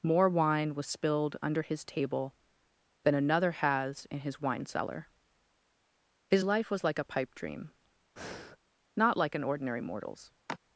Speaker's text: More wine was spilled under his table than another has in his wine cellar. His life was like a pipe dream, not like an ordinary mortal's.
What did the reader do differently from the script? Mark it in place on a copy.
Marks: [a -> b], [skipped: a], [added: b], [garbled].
More wine was spilled under his table than another has in his wine cellar. His life was like a pipe dream, not like an ordinary mortal's.